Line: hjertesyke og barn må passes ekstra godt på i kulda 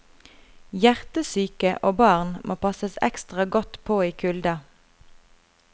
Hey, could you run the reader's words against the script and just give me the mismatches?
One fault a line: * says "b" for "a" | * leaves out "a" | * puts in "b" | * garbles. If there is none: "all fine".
all fine